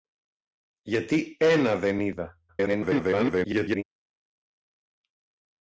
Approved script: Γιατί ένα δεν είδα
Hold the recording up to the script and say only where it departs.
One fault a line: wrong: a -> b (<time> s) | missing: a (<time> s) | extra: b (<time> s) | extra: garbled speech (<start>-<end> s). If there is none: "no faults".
extra: garbled speech (2.5-3.8 s)